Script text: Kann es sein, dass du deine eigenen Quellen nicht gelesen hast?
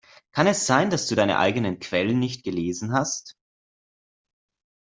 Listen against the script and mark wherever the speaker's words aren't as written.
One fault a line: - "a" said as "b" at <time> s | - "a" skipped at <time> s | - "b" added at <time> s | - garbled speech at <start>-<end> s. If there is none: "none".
none